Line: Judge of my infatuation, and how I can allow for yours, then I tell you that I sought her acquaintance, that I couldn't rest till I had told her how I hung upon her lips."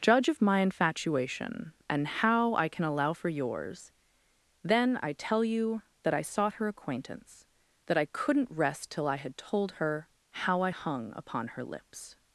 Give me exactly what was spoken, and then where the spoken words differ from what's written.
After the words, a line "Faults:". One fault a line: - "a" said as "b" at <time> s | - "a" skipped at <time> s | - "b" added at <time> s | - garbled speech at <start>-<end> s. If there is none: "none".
Judge of my infatuation, and how I can allow for yours, then I tell you that I sought her acquaintance, that I couldn't rest till I had told her how I hung upon her lips."
Faults:
none